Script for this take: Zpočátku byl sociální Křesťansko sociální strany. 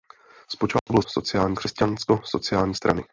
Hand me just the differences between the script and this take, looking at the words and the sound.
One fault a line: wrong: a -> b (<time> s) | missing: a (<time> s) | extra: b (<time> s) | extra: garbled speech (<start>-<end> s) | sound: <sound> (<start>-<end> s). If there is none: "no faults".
sound: dropout (0.8-0.9 s)